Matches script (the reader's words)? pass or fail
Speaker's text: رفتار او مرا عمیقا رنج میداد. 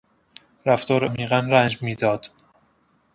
fail